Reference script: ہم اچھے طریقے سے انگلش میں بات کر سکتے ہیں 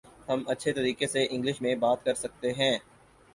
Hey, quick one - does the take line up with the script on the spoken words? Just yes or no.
yes